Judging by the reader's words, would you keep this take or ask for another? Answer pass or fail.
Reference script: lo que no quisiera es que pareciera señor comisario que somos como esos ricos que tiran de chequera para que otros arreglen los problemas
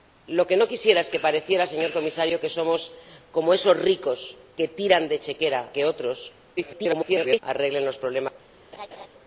fail